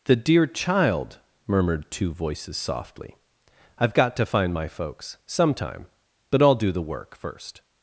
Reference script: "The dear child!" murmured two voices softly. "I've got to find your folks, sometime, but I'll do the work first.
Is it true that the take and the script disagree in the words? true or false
true